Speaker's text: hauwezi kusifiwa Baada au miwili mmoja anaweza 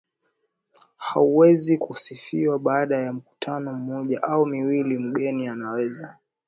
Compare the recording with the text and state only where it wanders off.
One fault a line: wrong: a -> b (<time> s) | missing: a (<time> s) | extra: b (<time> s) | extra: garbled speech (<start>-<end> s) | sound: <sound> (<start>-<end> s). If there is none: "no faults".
extra: ya mkutano mmoja (3.0 s)
wrong: mmoja -> mgeni (5.0 s)